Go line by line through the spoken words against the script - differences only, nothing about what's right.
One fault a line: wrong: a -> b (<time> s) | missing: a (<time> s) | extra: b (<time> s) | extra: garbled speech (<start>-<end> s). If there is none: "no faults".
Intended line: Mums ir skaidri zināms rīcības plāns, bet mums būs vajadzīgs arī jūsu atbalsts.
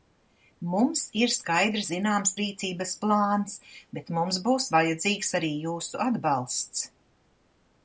no faults